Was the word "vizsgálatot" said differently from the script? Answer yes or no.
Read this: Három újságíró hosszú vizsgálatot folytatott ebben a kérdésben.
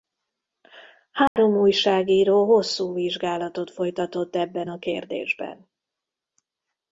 no